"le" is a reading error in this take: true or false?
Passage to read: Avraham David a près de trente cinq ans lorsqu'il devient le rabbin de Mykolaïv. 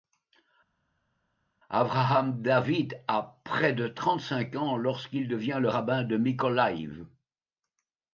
false